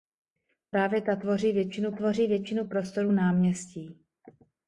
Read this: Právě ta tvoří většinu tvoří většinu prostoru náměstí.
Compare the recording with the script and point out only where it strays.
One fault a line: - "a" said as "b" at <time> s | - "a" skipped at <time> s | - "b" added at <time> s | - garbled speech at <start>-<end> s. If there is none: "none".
none